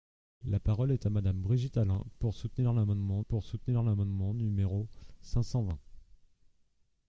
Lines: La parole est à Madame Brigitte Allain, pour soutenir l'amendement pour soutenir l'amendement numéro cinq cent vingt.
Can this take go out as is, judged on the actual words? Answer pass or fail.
pass